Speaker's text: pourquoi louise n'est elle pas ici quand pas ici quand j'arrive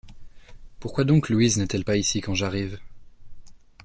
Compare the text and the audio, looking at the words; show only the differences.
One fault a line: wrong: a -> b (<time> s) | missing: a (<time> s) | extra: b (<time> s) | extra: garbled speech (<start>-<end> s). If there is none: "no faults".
extra: donc (1.0 s)
missing: pas ici quand (2.3 s)